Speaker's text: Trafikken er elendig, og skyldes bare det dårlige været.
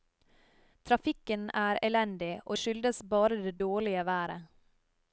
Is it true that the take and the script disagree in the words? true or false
false